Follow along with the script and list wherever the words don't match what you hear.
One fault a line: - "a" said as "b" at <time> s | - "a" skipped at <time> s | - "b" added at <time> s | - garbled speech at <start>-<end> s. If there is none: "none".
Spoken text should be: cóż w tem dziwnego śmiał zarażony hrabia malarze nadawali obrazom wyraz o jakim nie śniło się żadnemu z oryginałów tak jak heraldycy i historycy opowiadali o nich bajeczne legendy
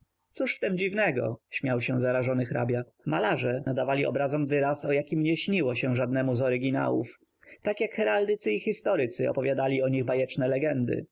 - "się" added at 1.8 s